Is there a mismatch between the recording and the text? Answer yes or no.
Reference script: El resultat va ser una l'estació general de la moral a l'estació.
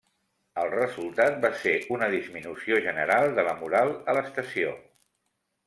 yes